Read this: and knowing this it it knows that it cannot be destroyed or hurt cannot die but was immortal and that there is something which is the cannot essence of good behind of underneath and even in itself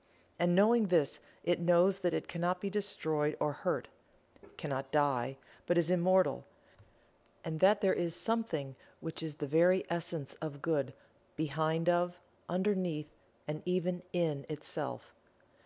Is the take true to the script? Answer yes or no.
no